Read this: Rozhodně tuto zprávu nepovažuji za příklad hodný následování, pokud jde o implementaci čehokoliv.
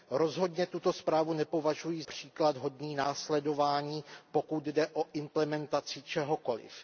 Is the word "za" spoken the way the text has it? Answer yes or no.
no